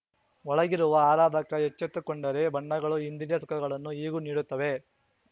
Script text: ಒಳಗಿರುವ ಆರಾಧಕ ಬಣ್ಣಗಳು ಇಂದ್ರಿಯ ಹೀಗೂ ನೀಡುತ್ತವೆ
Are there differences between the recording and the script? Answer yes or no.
yes